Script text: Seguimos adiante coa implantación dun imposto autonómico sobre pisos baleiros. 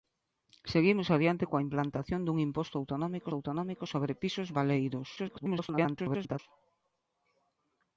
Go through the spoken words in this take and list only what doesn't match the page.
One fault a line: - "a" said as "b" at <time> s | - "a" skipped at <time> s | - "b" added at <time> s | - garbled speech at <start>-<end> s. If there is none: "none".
- "autonómico" added at 3.3 s
- garbled speech at 5.2-6.4 s